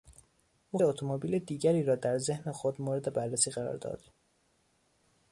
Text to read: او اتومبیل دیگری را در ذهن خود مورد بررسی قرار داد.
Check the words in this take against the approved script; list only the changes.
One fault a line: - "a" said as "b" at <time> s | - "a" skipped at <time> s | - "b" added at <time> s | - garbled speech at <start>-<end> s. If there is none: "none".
none